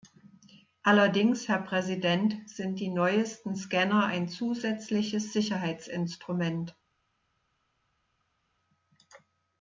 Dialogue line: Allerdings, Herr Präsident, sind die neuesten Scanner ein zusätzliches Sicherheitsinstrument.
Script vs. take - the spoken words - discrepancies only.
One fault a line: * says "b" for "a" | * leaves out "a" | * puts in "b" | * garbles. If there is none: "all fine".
all fine